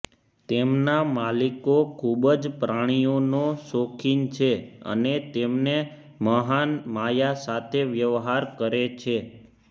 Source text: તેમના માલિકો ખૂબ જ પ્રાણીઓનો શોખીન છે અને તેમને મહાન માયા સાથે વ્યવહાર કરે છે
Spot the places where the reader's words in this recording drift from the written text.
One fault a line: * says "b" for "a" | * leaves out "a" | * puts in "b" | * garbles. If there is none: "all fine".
all fine